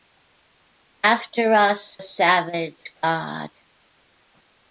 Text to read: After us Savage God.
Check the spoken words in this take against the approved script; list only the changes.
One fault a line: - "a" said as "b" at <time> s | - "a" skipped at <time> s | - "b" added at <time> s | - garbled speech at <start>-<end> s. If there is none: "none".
none